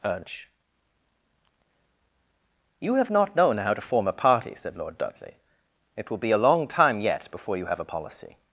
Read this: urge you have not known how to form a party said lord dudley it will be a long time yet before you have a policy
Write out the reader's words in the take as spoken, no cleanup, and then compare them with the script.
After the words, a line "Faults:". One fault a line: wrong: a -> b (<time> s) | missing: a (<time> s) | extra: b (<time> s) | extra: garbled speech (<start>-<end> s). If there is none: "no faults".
urge you have not known how to form a party said lord dudley it will be a long time yet before you have a policy
Faults:
no faults